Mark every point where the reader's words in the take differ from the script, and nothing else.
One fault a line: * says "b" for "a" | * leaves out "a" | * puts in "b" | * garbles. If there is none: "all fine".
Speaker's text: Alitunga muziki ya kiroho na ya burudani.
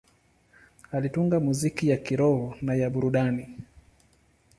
all fine